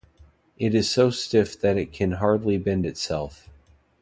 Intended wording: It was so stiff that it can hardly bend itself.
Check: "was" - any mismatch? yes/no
yes